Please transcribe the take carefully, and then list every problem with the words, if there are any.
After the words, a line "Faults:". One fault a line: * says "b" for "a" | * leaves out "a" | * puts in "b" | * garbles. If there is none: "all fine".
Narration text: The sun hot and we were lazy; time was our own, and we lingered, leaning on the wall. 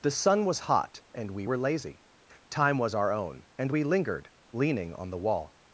The sun was hot and we were lazy; time was our own, and we lingered, leaning on the wall.
Faults:
* puts in "was"